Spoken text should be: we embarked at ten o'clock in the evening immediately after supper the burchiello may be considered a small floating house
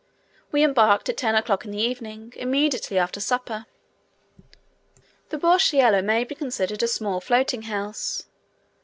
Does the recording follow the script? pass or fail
pass